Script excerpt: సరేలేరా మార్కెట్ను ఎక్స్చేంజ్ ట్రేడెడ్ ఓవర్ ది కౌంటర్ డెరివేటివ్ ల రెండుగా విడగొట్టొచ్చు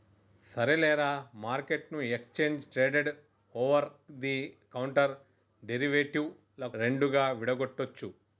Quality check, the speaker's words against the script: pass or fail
pass